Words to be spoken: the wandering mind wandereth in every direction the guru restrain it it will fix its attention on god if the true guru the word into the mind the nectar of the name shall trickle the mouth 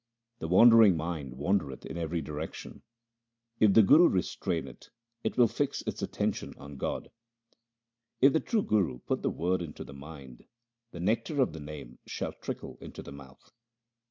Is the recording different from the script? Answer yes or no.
yes